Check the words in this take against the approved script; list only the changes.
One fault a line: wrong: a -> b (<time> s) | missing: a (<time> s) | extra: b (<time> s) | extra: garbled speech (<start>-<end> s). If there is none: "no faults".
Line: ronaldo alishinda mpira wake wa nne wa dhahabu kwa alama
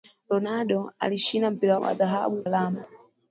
missing: wake (1.8 s)
missing: nne wa (1.9 s)
missing: kwa (2.4 s)